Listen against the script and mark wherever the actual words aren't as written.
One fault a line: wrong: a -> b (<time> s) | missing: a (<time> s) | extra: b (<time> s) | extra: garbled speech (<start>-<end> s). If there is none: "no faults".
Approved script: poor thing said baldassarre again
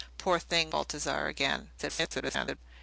missing: said (0.7 s)
extra: garbled speech (1.8-2.6 s)